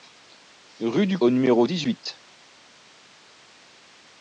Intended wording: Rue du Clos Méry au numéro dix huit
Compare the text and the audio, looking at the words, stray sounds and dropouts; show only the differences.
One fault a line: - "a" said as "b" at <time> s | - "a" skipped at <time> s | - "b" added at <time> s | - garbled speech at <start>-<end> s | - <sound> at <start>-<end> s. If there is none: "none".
- "Clos Méry" skipped at 1.2 s